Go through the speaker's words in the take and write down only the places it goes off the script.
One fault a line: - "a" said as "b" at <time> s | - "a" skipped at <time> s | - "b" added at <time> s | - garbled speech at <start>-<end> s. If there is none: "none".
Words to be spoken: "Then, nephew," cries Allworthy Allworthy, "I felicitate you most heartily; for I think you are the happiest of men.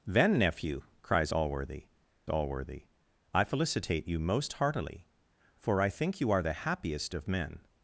none